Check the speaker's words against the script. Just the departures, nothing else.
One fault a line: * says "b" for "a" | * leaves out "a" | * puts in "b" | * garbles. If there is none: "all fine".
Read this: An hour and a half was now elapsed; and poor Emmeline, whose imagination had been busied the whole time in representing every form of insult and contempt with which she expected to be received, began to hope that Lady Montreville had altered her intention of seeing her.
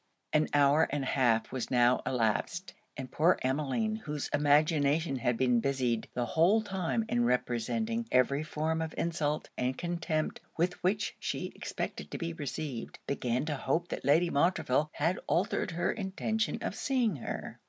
all fine